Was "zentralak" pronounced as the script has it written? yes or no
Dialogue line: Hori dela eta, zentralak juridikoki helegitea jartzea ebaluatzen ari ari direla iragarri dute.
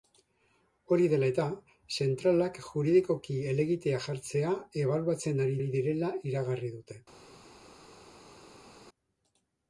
yes